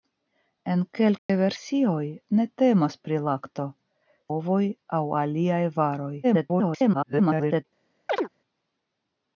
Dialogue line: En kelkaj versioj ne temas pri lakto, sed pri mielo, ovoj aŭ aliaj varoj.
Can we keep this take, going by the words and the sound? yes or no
no